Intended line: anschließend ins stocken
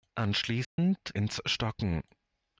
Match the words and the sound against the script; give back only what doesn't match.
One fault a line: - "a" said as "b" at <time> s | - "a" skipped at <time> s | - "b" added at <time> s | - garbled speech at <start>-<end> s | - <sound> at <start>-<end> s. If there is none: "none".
- dropout at 0.6-0.8 s